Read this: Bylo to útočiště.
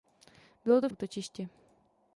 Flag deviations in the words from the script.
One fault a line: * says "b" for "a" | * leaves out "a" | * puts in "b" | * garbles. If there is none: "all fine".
all fine